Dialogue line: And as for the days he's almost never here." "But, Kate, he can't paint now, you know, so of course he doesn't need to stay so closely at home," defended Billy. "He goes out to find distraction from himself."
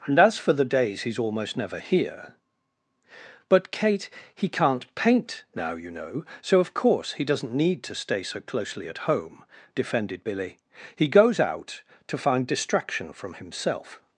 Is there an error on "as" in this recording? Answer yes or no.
no